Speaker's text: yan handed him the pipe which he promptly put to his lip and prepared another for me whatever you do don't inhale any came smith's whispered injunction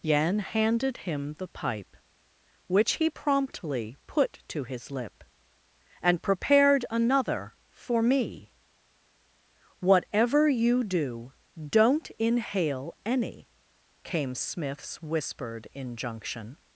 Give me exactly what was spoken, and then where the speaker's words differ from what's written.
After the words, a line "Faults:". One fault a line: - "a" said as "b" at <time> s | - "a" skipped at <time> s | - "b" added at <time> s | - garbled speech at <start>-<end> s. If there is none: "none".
yan handed him the pipe which he promptly put to his lip and prepared another for me whatever you do don't inhale any came smith's whispered injunction
Faults:
none